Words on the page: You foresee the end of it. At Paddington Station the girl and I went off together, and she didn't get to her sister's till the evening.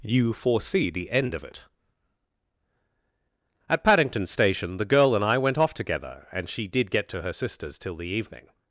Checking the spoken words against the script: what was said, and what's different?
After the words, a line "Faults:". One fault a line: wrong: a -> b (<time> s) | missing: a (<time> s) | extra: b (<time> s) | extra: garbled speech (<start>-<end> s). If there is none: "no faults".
You foresee the end of it. At Paddington Station the girl and I went off together, and she did get to her sister's till the evening.
Faults:
wrong: didn't -> did (6.7 s)